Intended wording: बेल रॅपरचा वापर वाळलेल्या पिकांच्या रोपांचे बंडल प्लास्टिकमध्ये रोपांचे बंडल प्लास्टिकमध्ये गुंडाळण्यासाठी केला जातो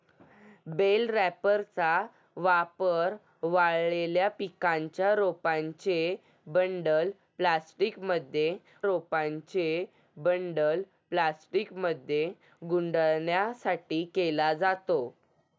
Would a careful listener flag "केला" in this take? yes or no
no